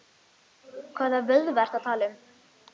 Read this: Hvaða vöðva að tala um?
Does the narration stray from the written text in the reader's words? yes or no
yes